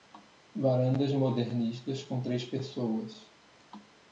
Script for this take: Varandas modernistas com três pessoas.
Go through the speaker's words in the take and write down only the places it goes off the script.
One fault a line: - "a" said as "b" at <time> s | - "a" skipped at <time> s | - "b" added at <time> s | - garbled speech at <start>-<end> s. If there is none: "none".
none